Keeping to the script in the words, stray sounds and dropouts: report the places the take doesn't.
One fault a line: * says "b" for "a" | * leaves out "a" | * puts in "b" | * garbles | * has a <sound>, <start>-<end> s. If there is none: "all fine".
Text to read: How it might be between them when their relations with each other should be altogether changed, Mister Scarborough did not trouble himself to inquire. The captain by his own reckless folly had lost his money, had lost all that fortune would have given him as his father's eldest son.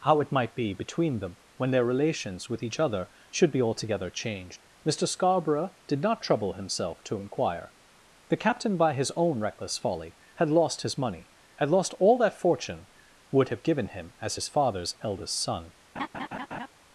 * has a laugh, 16.0-16.7 s